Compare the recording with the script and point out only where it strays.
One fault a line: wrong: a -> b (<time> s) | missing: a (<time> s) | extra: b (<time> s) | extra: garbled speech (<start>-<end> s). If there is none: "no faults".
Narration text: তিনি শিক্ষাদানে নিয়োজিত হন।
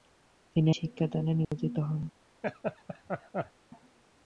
no faults